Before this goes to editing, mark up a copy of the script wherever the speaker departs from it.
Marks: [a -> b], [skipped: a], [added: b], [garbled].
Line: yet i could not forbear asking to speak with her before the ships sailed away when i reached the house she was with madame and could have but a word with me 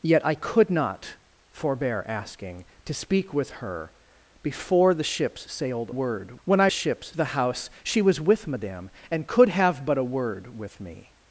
yet i could not forbear asking to speak with her before the ships sailed [away -> word] when i [reached -> ships] the house she was with madame and could have but a word with me